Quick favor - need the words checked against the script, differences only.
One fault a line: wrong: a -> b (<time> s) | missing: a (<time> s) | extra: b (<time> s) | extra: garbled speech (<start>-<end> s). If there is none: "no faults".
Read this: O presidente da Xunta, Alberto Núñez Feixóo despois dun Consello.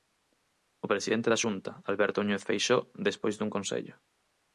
no faults